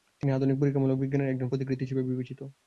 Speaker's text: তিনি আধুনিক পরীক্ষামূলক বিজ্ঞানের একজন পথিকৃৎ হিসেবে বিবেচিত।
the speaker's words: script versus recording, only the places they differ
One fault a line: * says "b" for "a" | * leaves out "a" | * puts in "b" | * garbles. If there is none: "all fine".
all fine